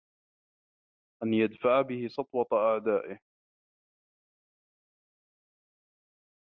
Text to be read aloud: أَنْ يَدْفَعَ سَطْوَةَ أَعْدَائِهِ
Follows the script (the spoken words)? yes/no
no